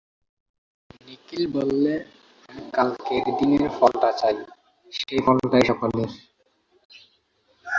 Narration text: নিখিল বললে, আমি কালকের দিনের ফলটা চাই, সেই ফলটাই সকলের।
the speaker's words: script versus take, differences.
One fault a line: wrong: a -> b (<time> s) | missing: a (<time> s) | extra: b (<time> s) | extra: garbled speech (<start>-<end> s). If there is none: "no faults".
no faults